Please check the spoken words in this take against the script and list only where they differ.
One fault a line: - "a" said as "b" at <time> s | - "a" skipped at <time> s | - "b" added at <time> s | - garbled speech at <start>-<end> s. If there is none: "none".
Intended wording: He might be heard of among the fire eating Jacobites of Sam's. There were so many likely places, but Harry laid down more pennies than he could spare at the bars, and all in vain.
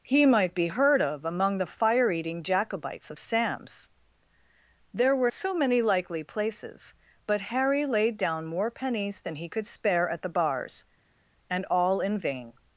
none